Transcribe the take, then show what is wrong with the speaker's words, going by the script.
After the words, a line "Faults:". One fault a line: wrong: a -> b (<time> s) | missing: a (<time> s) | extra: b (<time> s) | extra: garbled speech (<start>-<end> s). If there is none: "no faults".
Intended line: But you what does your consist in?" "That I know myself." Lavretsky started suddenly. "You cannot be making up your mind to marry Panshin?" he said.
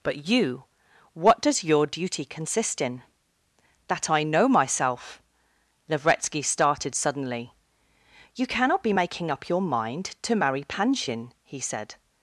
But you what does your duty consist in?" "That I know myself." Lavretsky started suddenly. "You cannot be making up your mind to marry Panshin?" he said.
Faults:
extra: duty (1.9 s)